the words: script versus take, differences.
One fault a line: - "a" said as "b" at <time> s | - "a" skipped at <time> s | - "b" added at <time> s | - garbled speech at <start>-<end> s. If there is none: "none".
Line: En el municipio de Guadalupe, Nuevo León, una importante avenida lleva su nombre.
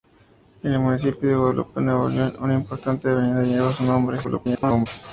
- garbled speech at 4.2-4.9 s